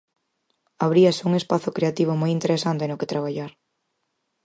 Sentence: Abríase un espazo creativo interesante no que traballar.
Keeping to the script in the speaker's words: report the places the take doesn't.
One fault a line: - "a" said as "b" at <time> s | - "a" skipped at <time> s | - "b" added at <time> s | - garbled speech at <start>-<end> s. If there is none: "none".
- "moi" added at 2.2 s